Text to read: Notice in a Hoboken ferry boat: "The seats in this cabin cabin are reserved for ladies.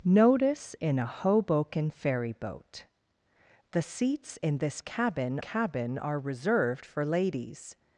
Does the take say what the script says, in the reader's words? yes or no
yes